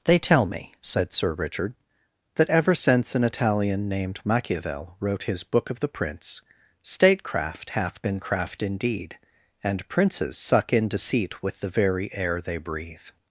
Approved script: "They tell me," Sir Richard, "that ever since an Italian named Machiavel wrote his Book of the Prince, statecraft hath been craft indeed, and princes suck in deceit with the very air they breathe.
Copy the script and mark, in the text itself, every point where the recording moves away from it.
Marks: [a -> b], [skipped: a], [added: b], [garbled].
"They tell me," [added: said] Sir Richard, "that ever since an Italian named Machiavel wrote his Book of the Prince, statecraft hath been craft indeed, and princes suck in deceit with the very air they breathe.